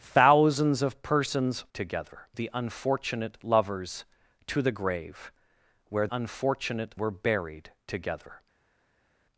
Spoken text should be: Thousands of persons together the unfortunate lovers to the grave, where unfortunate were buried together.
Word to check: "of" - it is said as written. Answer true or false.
true